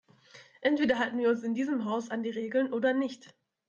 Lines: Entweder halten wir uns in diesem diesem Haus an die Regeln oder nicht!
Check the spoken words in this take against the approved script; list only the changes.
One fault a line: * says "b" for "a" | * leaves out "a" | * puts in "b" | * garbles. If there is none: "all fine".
* leaves out "diesem"